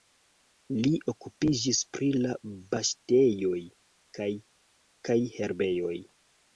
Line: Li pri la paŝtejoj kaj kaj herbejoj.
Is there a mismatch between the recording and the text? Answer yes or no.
yes